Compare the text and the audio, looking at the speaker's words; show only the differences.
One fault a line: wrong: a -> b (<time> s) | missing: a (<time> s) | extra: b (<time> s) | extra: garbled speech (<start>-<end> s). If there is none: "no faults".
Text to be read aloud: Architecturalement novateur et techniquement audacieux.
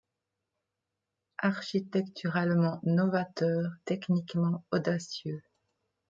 missing: et (3.7 s)